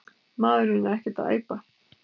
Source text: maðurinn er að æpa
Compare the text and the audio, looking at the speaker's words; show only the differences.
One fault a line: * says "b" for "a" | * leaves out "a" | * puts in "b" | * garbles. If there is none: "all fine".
* puts in "ekkert"